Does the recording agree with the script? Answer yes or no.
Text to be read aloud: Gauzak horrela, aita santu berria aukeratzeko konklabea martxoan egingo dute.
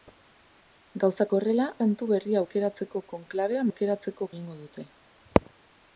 no